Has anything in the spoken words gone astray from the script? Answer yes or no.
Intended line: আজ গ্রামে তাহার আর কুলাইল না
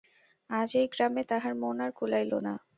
yes